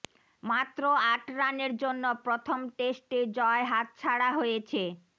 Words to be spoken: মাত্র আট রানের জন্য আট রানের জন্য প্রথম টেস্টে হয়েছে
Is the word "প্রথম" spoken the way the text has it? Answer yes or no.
no